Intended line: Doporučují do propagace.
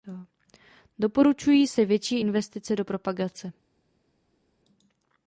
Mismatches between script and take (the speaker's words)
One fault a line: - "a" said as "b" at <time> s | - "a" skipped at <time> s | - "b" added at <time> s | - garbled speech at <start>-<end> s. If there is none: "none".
- "se větší investice" added at 1.7 s